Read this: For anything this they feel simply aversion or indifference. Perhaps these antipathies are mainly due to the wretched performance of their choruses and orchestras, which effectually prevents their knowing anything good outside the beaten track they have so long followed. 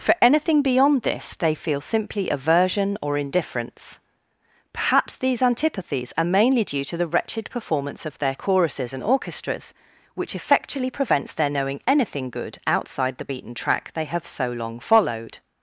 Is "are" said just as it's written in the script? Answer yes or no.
yes